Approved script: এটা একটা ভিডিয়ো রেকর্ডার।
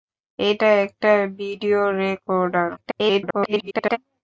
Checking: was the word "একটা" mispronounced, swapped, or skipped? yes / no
no